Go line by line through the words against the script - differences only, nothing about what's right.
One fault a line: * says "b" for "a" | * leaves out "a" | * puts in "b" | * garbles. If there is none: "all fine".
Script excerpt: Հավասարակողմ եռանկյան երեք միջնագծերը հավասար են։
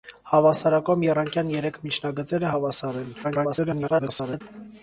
* garbles